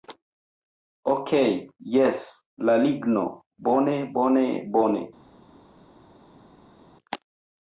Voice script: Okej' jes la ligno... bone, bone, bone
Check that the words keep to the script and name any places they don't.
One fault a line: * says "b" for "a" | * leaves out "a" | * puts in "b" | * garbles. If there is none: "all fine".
all fine